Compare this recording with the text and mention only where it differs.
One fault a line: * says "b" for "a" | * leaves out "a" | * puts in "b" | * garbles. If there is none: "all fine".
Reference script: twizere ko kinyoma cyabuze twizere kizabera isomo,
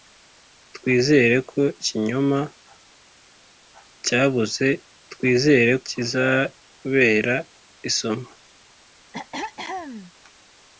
all fine